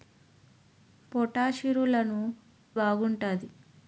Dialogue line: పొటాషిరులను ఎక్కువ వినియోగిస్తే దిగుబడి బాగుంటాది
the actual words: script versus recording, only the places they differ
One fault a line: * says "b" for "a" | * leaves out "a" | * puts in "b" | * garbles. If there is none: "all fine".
* leaves out "ఎక్కువ వినియోగిస్తే దిగుబడి"